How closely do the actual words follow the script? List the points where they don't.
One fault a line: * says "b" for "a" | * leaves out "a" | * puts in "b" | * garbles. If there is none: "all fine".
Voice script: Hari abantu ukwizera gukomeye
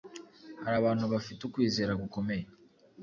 * puts in "bafite"